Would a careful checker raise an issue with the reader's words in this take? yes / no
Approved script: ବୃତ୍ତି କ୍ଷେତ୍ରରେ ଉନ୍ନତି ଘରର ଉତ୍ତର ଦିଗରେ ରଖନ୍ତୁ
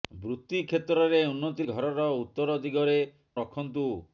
no